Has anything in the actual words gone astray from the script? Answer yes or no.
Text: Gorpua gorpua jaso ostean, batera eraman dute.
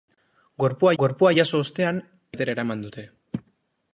no